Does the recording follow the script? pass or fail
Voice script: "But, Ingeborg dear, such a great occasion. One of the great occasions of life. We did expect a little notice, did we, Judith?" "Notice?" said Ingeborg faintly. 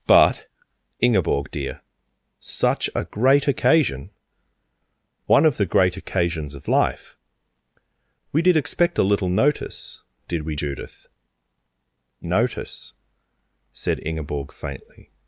pass